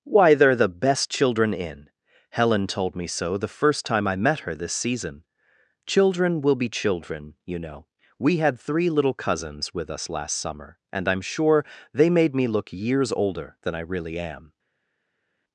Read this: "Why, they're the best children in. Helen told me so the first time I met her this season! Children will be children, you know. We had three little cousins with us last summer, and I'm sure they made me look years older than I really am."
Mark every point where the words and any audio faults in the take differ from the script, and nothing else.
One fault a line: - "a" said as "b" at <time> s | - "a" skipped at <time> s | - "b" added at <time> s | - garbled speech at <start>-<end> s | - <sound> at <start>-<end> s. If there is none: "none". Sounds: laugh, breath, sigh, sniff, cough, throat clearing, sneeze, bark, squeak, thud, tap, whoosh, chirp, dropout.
none